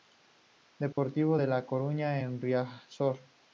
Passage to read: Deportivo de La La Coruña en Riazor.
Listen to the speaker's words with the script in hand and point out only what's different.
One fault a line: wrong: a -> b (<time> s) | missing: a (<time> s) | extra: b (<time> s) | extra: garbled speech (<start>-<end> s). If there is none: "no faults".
missing: La (1.7 s)